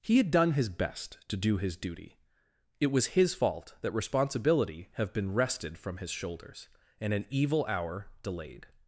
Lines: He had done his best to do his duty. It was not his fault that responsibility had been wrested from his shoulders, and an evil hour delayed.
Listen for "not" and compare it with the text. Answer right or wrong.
wrong